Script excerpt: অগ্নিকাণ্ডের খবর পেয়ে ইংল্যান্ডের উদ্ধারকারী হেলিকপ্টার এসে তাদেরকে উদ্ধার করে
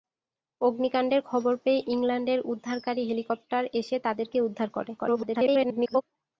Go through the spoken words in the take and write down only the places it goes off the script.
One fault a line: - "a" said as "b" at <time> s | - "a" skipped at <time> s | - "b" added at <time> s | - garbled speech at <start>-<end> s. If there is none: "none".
- garbled speech at 5.0-6.0 s